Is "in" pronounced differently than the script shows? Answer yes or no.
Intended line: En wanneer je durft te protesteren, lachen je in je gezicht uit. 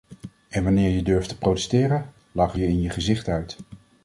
no